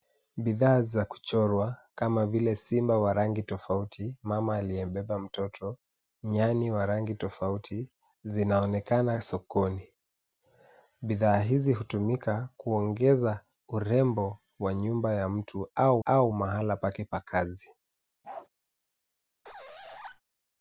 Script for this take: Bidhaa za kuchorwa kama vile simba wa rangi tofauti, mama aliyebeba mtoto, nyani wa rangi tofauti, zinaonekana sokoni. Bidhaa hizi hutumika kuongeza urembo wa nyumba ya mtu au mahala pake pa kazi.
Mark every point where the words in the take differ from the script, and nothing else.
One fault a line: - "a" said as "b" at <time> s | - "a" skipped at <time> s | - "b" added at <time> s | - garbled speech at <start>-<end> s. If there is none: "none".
- "au" added at 16.0 s